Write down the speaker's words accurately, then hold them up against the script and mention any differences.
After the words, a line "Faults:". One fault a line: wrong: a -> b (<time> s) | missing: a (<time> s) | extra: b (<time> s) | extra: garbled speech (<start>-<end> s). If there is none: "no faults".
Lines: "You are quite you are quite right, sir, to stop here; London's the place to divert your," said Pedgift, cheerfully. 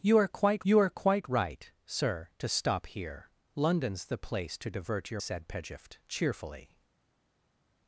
"You are quite you are quite right, sir, to stop here; London's the place to divert your," said Pedgift, cheerfully.
Faults:
no faults